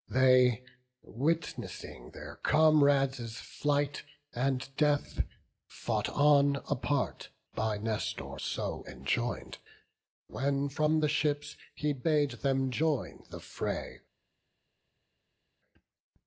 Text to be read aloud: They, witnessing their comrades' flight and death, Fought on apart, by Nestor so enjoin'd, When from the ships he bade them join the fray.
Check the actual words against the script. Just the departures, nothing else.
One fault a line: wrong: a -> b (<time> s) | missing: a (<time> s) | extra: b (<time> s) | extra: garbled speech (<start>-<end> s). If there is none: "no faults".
no faults